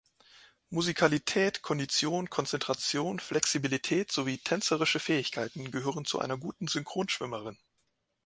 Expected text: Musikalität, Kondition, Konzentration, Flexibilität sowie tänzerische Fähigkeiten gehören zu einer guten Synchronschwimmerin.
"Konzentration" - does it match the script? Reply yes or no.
yes